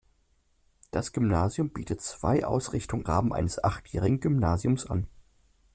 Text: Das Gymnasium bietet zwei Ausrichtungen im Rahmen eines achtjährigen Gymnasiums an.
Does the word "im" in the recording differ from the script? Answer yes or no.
yes